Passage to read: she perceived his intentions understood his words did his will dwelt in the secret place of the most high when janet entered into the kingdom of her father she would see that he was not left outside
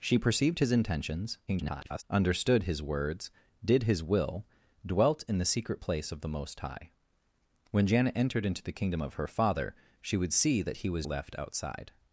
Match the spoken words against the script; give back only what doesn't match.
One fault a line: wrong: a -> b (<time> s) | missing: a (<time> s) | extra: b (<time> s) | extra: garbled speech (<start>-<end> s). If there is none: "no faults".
extra: garbled speech (1.5-2.0 s)
missing: not (11.1 s)